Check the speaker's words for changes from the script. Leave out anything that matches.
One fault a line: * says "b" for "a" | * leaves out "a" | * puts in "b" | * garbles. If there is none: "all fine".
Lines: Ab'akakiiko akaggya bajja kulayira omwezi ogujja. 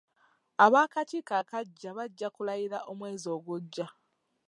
all fine